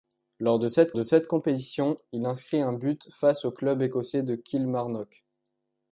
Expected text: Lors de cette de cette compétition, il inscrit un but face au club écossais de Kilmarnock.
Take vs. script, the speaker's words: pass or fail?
pass